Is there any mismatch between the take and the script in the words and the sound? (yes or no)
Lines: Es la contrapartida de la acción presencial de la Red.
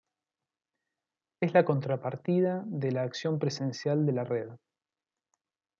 no